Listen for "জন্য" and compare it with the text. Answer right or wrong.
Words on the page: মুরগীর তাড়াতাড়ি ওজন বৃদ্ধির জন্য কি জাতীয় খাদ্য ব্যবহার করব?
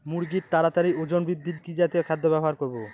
wrong